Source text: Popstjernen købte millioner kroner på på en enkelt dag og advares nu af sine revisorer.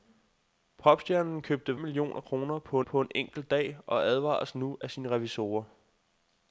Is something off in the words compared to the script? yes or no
no